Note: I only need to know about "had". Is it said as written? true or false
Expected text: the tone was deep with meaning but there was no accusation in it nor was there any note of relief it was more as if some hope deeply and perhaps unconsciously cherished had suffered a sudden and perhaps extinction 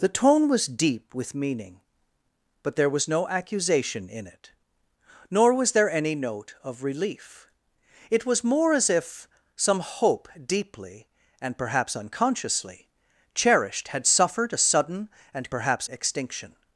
true